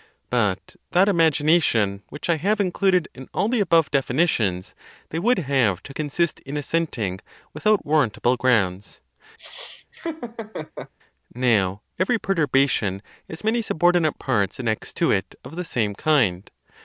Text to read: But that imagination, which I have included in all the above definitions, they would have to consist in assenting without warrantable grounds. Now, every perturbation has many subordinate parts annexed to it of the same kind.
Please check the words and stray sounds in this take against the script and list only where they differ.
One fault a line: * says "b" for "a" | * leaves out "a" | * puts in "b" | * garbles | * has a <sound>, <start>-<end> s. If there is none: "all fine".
* has a laugh, 9.4-10.9 s